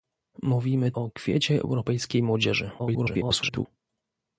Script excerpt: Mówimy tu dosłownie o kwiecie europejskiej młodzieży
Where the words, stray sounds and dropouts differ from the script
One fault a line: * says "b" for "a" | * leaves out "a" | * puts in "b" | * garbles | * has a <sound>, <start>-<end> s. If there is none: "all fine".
* leaves out "tu dosłownie"
* garbles